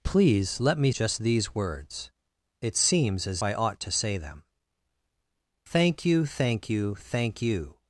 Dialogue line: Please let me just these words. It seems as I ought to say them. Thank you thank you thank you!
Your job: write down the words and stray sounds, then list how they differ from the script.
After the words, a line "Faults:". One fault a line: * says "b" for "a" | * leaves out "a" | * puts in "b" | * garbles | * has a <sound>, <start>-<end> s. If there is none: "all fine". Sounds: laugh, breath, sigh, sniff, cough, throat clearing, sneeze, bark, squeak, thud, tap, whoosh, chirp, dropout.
Please let me just these words. It seems as I ought to say them. Thank you thank you thank you!
Faults:
all fine